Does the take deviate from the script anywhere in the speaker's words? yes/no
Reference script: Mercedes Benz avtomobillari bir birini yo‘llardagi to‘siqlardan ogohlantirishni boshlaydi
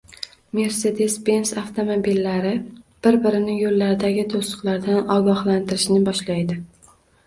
no